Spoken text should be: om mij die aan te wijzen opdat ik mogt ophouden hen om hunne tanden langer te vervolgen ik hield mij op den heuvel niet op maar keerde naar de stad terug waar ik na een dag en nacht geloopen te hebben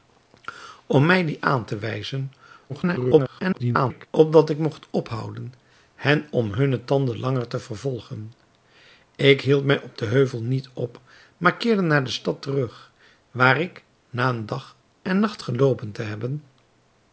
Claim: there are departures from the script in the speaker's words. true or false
true